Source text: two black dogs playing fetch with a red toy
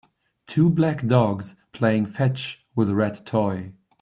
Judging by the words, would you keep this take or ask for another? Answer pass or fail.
pass